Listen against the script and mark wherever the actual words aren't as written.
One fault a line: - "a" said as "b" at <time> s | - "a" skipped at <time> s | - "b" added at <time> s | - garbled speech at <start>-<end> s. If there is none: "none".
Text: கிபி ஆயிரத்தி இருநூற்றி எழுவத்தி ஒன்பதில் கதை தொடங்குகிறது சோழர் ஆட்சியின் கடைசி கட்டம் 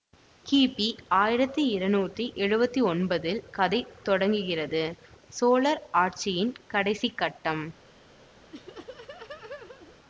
none